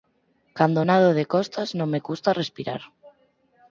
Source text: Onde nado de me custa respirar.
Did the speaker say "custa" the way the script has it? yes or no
yes